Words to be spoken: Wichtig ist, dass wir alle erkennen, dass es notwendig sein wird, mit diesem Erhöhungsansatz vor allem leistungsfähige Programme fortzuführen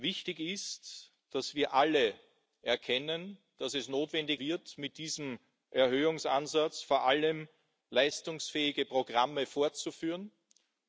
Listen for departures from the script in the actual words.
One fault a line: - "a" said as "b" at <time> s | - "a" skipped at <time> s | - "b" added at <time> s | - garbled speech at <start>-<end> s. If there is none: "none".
- "sein" skipped at 4.4 s